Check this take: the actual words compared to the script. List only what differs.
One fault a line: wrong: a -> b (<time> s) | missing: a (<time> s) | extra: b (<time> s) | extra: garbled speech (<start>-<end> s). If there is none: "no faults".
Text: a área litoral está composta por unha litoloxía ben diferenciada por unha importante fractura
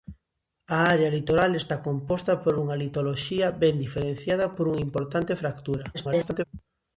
extra: garbled speech (5.9-6.4 s)